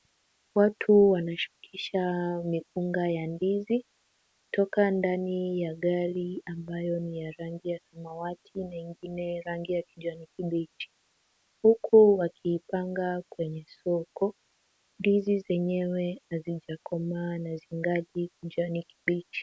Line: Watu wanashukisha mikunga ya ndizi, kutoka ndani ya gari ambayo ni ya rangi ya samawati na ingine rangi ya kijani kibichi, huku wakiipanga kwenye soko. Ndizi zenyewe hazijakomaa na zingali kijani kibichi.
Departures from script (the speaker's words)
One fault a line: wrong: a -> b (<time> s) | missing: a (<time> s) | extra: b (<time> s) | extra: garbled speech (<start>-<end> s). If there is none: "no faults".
no faults